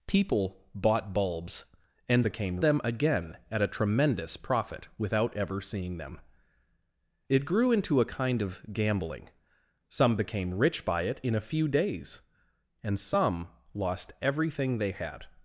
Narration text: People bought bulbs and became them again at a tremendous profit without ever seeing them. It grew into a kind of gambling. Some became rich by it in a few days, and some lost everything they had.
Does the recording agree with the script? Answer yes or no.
yes